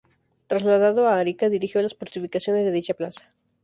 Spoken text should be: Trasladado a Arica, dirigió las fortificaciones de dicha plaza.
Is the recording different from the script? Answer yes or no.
no